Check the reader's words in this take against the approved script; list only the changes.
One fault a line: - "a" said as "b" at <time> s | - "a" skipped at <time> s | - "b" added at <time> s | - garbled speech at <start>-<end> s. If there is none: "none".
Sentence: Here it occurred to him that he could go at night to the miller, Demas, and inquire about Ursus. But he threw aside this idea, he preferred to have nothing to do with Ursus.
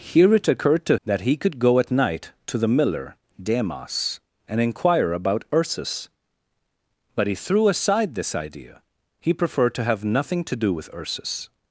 - "him" skipped at 1.0 s